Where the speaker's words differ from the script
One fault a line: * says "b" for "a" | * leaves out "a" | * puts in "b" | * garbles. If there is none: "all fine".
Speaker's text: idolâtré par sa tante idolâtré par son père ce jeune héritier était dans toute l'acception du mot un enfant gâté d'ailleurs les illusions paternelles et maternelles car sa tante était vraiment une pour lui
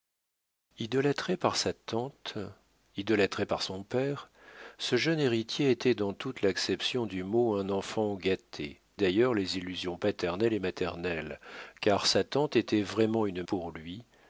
all fine